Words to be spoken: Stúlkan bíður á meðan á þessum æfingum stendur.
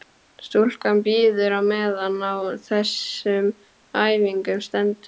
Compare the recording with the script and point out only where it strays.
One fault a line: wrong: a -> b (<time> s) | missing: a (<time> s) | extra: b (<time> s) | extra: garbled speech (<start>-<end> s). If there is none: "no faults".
no faults